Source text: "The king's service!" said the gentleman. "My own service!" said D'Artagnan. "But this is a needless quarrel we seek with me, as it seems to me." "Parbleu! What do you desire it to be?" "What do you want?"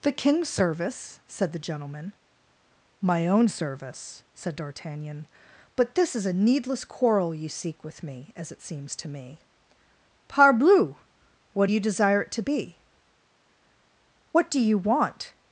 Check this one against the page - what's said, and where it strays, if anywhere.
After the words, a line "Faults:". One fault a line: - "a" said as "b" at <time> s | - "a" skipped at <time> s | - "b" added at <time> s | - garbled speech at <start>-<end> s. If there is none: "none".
"The king's service!" said the gentleman. "My own service!" said D'Artagnan. "But this is a needless quarrel you seek with me, as it seems to me." "Parbleu! What do you desire it to be?" "What do you want?"
Faults:
- "we" said as "you" at 7.3 s